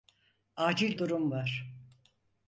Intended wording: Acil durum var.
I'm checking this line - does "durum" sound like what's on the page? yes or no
yes